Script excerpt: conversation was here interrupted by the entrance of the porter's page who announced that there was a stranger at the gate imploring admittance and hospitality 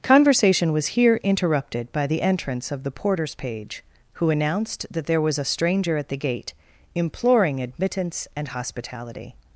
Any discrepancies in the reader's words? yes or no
no